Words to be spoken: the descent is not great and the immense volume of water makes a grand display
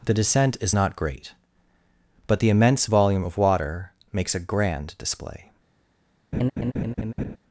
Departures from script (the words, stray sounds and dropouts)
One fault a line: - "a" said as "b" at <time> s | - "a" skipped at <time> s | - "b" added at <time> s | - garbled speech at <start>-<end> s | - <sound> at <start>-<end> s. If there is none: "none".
- "and" said as "but" at 2.3 s
- laugh at 6.3-7.4 s